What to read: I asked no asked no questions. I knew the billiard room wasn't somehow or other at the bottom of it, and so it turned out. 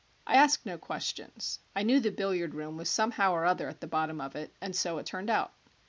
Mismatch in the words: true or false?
true